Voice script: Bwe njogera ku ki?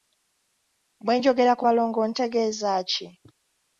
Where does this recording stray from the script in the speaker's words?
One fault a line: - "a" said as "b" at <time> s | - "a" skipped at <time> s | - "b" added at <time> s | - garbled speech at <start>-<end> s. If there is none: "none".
- "balongo ntegeeza" added at 1.6 s